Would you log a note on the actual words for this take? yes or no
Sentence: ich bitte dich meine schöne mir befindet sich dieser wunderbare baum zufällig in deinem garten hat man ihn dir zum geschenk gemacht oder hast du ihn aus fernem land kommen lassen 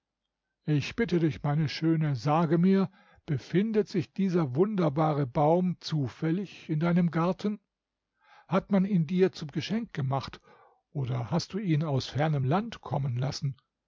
yes